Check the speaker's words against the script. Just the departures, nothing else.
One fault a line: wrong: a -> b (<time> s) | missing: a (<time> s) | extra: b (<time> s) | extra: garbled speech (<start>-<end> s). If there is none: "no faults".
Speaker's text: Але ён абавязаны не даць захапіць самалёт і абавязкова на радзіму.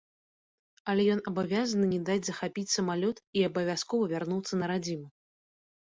extra: вярнуцца (4.1 s)